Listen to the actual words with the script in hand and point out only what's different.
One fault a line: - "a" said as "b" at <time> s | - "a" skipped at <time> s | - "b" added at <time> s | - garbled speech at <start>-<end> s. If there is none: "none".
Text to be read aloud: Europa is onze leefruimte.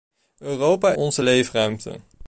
- "is" skipped at 0.9 s